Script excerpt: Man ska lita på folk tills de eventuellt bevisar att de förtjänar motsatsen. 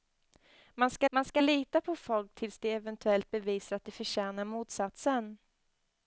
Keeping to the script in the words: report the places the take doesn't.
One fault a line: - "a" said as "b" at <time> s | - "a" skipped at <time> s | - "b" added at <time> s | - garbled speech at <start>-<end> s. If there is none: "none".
- "man ska" added at 1.1 s